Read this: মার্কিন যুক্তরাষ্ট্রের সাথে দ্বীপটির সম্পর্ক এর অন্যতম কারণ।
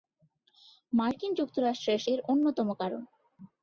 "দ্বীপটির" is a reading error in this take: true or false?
true